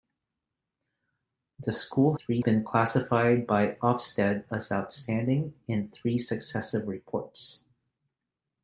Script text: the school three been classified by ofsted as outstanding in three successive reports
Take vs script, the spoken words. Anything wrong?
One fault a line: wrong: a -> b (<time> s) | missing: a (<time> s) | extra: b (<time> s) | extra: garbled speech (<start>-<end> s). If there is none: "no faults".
no faults